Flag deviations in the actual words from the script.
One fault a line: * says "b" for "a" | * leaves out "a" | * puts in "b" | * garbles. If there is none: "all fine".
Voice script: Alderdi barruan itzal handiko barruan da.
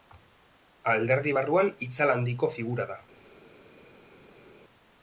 * says "figura" for "barruan"